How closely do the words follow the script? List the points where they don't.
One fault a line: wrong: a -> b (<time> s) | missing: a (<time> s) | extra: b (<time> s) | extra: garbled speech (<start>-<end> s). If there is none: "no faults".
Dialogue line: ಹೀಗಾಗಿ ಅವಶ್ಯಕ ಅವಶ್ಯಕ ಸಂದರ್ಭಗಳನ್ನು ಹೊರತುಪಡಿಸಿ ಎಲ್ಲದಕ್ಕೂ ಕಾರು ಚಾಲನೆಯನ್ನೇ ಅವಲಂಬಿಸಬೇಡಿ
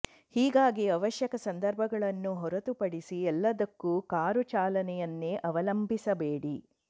missing: ಅವಶ್ಯಕ (1.4 s)